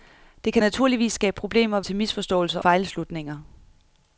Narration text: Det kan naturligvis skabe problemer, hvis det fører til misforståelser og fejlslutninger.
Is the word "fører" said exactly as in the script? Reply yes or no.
no